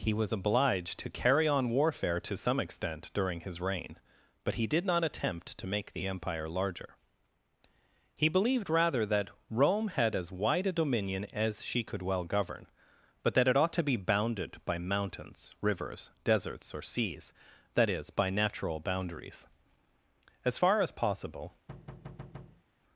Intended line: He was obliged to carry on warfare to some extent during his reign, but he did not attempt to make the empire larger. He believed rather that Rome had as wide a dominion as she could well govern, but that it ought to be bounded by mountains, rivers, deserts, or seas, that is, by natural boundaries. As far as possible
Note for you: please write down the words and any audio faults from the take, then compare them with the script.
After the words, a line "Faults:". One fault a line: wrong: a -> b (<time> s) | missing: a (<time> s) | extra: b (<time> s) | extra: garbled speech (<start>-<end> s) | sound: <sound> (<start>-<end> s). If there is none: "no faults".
He was obliged to carry on warfare to some extent during his reign, but he did not attempt to make the empire larger. He believed rather that Rome had as wide a dominion as she could well govern, but that it ought to be bounded by mountains, rivers, deserts, or seas, that is, by natural boundaries. As far as possible
Faults:
sound: thud (21.7-22.6 s)